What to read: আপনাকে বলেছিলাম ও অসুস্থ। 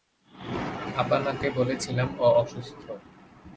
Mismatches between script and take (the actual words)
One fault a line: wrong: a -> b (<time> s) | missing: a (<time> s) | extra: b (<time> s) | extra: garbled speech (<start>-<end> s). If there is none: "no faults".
no faults